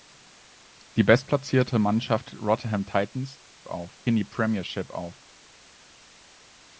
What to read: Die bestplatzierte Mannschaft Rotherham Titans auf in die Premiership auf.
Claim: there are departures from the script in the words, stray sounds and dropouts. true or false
false